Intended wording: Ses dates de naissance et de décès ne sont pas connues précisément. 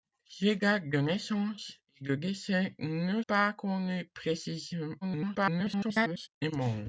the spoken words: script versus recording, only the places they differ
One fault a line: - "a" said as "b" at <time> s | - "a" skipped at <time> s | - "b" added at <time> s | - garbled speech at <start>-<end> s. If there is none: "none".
- "sont" skipped at 3.2 s
- garbled speech at 5.0-6.3 s